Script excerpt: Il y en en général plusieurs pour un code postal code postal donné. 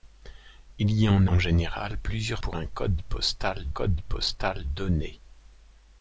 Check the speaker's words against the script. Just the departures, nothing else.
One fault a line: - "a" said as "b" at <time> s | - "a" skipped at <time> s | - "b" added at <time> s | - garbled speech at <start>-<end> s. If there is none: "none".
none